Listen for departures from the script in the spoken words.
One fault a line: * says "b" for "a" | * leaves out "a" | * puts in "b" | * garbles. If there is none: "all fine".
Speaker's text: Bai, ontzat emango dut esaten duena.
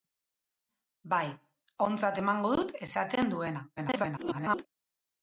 * garbles